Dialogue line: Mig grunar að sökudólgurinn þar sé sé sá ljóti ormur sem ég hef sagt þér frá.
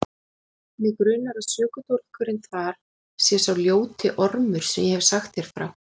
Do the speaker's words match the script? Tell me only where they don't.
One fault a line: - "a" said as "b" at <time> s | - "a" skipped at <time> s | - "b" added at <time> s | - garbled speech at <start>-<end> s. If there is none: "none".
- "sé" skipped at 3.4 s